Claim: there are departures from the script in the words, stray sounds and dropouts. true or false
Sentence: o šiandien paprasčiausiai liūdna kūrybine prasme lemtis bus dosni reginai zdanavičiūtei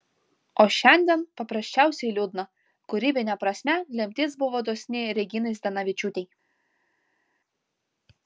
true